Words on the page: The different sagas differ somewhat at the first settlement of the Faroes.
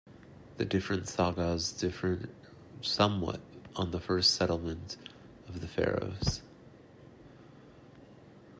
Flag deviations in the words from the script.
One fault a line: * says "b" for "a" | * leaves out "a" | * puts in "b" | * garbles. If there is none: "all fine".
* says "on" for "at"